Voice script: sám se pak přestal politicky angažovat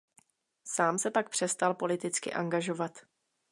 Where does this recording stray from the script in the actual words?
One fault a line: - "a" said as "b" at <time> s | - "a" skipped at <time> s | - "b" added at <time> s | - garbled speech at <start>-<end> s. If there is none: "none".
none